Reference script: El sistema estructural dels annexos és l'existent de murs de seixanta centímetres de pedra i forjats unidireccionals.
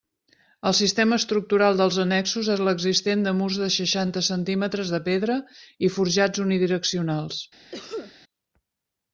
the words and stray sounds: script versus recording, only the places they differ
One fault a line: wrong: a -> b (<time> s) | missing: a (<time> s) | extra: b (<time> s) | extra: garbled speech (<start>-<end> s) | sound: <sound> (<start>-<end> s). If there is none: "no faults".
sound: cough (7.7-8.2 s)